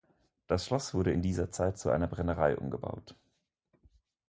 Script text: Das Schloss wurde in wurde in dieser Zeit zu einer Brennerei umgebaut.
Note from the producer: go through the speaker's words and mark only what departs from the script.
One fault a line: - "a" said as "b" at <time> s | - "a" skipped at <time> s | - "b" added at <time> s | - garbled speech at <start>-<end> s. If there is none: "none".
- "wurde in" skipped at 1.2 s